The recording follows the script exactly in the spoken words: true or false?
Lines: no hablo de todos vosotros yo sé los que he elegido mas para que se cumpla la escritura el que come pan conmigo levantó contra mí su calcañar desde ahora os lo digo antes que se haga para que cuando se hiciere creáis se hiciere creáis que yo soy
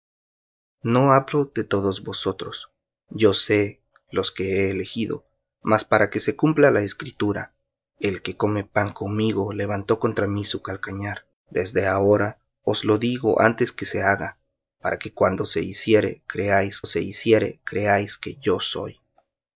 true